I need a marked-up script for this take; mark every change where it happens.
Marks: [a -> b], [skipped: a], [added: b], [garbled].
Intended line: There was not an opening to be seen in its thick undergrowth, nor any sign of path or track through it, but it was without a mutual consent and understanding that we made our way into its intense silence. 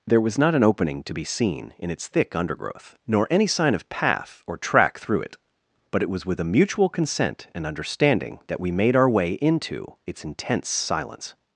There was not an opening to be seen in its thick undergrowth, nor any sign of path or track through it, but it was [without -> with] a mutual consent and understanding that we made our way into its intense silence.